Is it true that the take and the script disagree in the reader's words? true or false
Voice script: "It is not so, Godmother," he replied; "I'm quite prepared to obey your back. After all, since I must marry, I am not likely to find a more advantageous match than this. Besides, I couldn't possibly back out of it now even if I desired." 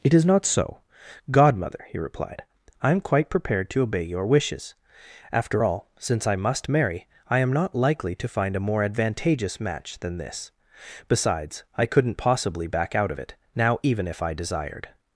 true